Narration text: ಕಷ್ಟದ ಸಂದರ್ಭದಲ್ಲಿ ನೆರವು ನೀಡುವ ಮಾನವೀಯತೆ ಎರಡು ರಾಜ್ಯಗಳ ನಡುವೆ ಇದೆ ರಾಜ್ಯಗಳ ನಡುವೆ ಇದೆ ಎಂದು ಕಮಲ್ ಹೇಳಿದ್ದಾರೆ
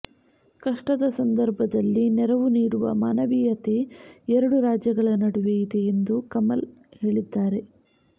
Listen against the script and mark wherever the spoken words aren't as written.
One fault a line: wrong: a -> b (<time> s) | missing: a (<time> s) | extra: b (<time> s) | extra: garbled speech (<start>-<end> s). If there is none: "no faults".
missing: ರಾಜ್ಯಗಳ ನಡುವೆ ಇದೆ (5.8 s)